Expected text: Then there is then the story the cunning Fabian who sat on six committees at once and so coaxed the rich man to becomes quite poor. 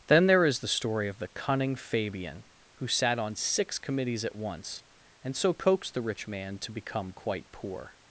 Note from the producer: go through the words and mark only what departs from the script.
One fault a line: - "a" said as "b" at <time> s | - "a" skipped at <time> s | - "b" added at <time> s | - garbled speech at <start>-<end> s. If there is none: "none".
- "then" skipped at 0.6 s
- "of" added at 1.1 s
- "becomes" said as "become" at 6.7 s